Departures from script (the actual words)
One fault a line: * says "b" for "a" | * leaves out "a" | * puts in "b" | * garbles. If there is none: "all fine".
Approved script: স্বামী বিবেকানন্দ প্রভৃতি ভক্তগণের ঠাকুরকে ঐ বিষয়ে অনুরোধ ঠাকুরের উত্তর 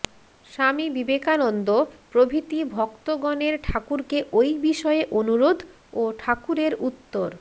* puts in "ও"